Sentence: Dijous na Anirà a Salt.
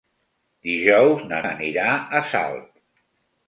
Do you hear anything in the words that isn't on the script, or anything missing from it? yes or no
no